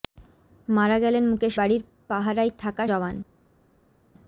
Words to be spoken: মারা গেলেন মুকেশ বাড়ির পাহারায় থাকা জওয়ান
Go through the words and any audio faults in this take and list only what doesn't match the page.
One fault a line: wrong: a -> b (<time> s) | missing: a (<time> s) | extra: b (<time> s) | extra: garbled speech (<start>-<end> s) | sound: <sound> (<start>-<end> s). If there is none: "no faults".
no faults